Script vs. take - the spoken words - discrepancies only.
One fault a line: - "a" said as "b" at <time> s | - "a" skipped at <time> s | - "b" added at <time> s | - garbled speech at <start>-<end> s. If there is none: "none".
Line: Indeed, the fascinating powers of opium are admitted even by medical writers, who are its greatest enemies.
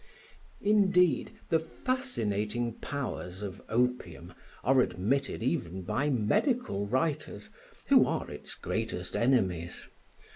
none